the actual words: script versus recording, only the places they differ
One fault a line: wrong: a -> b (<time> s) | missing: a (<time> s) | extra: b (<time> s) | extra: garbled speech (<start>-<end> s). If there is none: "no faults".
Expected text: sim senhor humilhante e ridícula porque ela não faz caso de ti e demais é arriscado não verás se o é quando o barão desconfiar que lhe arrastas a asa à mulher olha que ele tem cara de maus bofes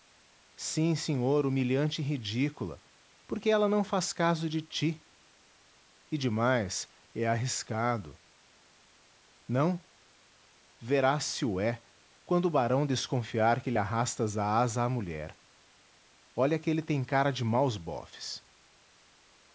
no faults